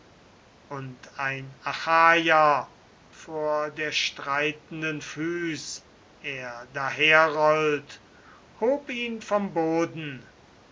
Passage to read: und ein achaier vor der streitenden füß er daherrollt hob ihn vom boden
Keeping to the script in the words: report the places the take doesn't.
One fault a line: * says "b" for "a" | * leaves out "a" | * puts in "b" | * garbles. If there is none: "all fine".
all fine